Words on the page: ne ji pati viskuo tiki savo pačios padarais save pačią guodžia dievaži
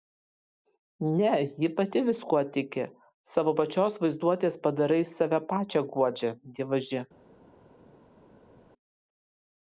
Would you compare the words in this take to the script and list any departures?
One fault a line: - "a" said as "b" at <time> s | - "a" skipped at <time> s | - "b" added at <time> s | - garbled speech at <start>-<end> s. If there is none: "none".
- "vaizduotės" added at 4.0 s